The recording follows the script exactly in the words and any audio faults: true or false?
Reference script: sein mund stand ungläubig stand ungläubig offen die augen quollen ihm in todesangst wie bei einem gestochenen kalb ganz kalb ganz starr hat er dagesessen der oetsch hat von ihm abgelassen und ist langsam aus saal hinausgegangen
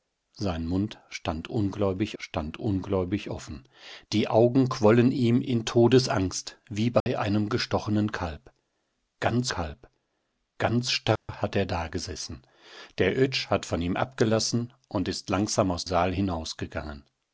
false